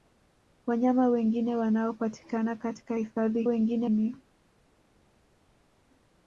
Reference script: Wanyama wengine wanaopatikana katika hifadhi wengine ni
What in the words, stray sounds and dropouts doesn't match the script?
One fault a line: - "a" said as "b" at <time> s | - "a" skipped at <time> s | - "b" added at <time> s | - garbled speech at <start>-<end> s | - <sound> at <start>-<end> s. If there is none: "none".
none